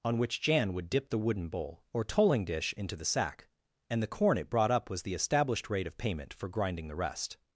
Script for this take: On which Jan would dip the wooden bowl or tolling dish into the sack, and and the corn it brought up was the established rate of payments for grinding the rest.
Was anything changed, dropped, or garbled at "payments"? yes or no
yes